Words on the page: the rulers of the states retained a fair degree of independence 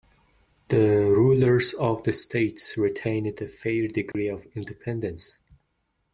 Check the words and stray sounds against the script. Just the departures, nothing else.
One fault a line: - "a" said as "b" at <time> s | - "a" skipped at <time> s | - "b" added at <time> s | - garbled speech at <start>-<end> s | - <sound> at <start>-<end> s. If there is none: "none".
- dropout at 4.1-4.1 s